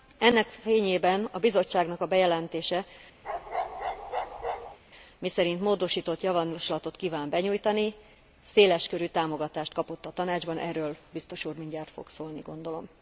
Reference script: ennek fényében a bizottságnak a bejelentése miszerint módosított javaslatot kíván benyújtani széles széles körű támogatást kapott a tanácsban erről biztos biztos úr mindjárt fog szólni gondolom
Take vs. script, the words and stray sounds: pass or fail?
fail